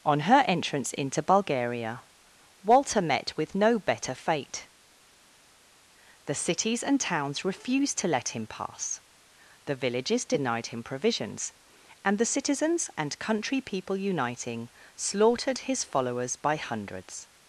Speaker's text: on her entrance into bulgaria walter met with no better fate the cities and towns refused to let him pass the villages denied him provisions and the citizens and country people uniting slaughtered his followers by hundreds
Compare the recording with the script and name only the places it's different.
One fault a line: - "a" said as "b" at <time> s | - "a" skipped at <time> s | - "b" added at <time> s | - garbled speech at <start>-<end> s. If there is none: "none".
none